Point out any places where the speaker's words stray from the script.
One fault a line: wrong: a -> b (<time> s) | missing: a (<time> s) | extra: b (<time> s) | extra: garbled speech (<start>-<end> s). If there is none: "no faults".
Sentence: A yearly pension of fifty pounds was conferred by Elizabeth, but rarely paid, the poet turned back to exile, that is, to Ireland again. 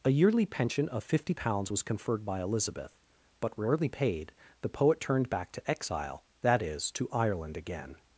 no faults